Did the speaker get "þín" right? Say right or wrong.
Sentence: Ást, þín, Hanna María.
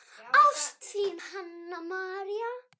right